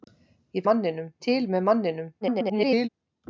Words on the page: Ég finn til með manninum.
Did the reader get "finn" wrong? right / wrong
wrong